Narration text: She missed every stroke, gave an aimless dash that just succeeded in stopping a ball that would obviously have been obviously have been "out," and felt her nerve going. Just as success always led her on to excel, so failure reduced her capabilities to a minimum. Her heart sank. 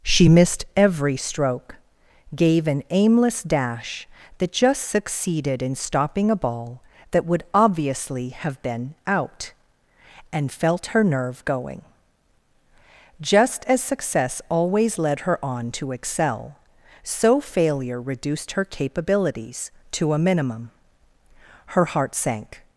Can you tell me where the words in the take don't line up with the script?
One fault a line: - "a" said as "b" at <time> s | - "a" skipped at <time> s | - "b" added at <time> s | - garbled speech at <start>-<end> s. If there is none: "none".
- "obviously have been" skipped at 8.9 s